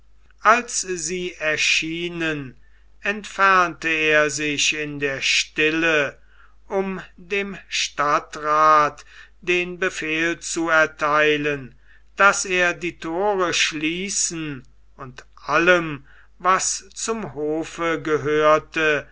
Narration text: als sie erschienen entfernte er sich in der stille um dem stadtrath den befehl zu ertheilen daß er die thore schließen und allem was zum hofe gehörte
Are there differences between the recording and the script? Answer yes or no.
no